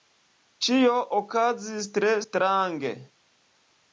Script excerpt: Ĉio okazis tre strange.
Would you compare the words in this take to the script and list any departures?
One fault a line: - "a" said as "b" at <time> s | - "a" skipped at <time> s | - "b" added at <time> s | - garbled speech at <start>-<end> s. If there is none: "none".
none